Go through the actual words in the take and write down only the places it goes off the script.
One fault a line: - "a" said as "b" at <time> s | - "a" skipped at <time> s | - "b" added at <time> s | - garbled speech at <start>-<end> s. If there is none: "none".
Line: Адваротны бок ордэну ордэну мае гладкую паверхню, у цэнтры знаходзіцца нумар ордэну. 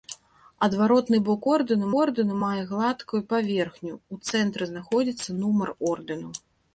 none